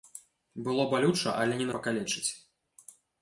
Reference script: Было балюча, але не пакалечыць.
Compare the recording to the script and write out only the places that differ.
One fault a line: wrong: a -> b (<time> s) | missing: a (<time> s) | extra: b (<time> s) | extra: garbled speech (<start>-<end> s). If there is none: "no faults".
no faults